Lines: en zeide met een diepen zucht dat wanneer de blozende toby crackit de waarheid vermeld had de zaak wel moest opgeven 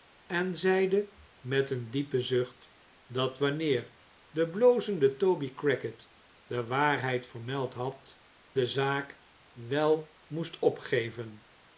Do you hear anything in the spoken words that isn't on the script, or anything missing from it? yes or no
no